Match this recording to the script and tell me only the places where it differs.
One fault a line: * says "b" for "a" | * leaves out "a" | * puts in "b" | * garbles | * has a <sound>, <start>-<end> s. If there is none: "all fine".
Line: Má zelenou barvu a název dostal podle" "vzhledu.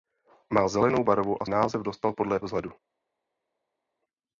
all fine